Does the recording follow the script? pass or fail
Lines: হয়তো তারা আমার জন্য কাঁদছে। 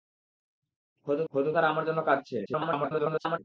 fail